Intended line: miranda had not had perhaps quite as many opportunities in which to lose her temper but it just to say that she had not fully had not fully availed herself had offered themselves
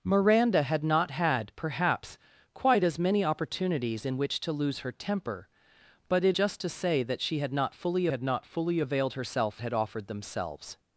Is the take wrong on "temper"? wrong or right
right